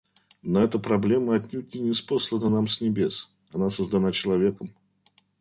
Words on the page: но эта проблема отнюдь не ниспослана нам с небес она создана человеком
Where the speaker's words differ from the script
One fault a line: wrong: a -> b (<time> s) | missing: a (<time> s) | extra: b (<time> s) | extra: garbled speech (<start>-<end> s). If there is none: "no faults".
no faults